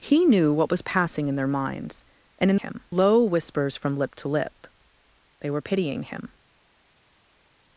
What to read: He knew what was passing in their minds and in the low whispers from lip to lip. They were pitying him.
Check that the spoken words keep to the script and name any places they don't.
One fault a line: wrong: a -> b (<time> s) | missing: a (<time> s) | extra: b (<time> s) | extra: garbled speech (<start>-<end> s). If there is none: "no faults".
wrong: the -> him (2.5 s)